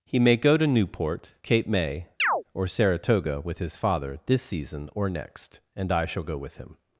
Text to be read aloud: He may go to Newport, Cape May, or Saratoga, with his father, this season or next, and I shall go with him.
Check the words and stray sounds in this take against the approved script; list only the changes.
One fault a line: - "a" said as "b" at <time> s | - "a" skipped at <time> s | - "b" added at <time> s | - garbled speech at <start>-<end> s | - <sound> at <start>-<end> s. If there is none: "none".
- chirp at 2.2-2.4 s